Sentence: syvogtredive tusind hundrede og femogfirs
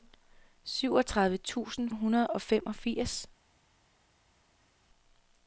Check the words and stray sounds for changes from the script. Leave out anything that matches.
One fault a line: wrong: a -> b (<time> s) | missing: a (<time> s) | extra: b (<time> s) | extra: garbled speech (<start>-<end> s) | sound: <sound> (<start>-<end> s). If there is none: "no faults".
no faults